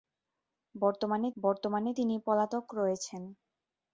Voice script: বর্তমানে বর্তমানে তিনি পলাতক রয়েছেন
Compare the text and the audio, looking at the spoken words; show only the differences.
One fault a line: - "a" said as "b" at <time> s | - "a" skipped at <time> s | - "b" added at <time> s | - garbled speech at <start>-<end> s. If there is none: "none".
none